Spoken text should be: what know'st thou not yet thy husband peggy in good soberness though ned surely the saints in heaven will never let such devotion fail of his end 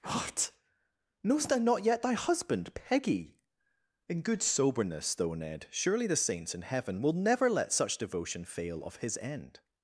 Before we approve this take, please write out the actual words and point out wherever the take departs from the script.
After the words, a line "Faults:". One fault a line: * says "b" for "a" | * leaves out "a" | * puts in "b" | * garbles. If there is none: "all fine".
what know'st thou not yet thy husband peggy in good soberness though ned surely the saints in heaven will never let such devotion fail of his end
Faults:
all fine